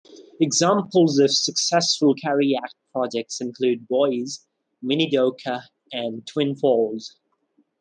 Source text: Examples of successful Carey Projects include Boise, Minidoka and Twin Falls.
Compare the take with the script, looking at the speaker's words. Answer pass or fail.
fail